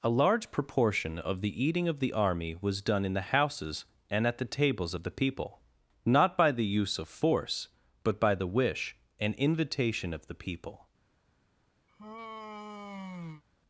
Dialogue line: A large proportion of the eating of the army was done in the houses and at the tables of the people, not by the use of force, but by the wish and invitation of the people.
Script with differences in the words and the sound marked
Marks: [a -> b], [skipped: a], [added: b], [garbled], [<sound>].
A large proportion of the eating of the army was done in the houses and at the tables of the people, not by the use of force, but by the wish and invitation of the people. [sigh]